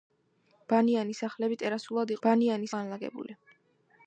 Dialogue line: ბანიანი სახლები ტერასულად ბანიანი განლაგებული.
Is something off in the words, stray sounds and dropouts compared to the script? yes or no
no